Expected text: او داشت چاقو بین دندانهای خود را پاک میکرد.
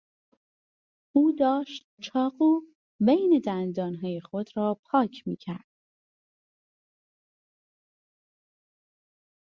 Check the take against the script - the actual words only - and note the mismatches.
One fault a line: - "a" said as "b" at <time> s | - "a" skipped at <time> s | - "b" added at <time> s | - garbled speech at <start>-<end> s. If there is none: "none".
none